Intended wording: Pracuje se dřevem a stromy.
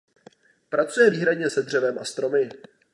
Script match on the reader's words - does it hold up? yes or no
no